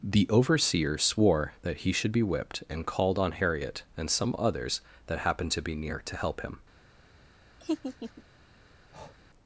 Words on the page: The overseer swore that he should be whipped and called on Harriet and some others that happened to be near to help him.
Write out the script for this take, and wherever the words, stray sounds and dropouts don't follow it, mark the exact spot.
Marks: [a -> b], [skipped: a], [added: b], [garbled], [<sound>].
The overseer swore that he should be whipped and called on Harriet and some others that happened to be near to help him. [laugh] [breath]